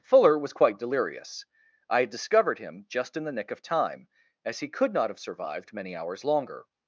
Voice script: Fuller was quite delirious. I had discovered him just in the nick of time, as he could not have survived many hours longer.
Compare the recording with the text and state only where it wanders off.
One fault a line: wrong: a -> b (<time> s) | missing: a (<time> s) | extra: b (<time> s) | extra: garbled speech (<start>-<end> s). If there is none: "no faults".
no faults